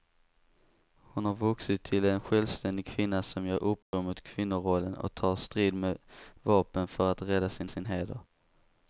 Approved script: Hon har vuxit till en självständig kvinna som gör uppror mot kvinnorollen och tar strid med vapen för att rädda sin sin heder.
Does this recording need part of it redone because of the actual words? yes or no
no